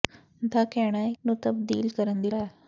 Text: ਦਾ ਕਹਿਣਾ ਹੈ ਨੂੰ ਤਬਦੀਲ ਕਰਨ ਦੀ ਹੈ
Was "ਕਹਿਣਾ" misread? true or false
false